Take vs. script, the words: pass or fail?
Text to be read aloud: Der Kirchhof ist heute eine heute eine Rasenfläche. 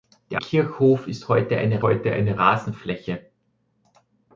pass